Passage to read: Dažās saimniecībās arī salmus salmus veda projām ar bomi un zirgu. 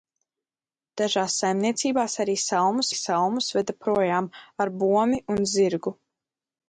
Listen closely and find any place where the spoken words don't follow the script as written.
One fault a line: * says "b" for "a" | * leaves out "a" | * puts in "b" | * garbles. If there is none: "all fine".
all fine